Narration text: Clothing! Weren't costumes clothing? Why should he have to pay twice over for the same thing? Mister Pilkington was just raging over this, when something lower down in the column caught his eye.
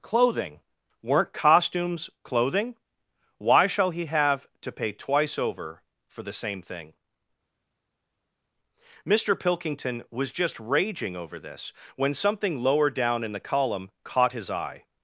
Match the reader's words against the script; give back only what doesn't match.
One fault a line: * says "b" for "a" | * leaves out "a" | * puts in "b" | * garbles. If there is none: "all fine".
* says "shall" for "should"